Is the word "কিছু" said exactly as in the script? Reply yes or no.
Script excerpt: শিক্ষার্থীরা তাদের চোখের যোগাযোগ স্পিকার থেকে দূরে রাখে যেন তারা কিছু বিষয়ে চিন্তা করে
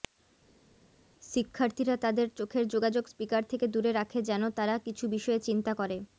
yes